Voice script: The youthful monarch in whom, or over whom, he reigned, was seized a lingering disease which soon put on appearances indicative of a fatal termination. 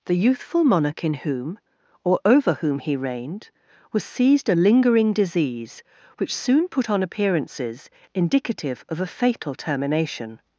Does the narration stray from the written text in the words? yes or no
no